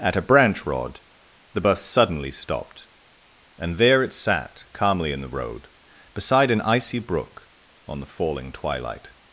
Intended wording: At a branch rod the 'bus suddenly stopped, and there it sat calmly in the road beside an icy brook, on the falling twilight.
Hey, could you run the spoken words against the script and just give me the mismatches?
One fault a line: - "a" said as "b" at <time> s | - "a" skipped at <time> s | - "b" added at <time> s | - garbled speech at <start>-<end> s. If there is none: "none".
none